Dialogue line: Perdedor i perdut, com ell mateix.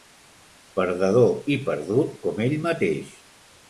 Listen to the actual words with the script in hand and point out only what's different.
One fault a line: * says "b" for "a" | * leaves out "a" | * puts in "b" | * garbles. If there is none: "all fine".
all fine